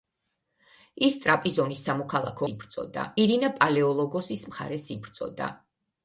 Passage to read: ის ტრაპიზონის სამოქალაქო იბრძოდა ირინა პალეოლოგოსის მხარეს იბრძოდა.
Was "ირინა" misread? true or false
false